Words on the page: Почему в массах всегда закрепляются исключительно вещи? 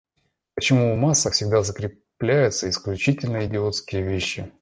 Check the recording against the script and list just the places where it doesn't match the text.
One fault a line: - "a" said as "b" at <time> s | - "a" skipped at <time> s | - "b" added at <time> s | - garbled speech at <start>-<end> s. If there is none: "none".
- "идиотские" added at 3.4 s